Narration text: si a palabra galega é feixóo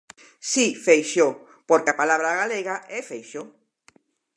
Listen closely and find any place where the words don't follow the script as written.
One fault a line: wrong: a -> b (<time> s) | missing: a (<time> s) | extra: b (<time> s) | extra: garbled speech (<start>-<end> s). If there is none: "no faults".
extra: feixóo porque (0.8 s)